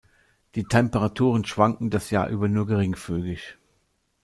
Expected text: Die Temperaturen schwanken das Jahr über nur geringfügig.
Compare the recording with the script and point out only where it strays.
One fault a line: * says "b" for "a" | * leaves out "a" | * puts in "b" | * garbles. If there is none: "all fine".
all fine